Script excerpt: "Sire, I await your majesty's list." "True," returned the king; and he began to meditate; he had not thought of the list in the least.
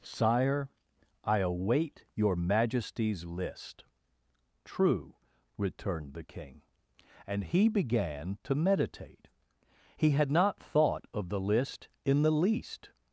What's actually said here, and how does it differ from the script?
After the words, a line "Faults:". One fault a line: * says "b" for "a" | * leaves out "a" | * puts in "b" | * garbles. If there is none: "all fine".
"Sire, I await your majesty's list." "True," returned the king; and he began to meditate; he had not thought of the list in the least.
Faults:
all fine